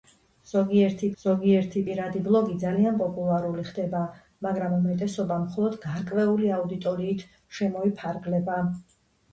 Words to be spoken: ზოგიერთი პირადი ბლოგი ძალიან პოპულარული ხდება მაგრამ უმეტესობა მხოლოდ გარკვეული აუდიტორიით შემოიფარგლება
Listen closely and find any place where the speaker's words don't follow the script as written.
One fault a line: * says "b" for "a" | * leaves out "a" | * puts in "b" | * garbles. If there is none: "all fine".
* puts in "ზოგიერთი"